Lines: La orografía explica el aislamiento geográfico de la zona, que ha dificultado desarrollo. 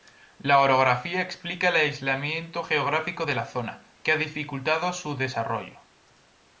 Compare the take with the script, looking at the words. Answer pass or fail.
fail